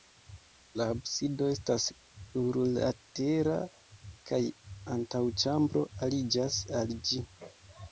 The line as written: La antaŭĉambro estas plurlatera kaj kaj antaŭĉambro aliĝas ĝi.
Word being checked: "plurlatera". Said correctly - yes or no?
yes